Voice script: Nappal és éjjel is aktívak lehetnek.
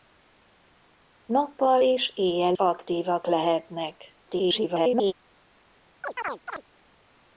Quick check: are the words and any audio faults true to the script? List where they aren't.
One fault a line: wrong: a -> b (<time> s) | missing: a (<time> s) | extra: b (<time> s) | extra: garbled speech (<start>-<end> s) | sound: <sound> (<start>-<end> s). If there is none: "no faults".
missing: is (2.5 s)
extra: garbled speech (4.3-5.1 s)
sound: chirp (6.0-6.6 s)